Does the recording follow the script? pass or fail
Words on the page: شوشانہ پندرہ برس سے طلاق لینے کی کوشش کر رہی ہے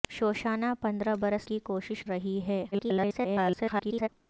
fail